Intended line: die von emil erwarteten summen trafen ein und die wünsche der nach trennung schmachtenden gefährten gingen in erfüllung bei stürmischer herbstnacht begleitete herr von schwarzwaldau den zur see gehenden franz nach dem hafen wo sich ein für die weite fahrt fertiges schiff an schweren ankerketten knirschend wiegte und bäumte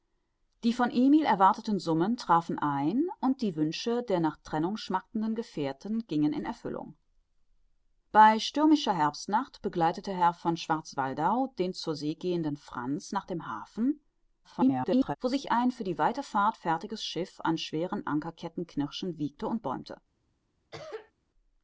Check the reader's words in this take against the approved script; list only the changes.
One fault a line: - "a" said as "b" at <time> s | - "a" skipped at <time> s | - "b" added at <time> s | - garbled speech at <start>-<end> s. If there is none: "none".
- garbled speech at 14.4-15.2 s